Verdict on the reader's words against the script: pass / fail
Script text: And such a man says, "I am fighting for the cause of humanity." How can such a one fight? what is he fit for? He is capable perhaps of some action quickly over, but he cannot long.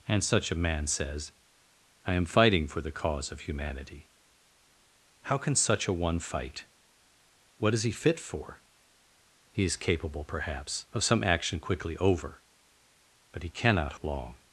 pass